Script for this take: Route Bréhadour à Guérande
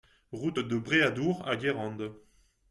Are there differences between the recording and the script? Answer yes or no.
yes